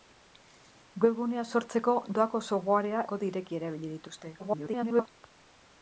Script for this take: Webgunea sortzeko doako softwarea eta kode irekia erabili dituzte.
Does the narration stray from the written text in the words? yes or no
yes